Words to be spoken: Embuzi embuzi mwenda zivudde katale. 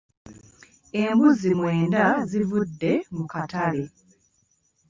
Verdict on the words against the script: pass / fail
fail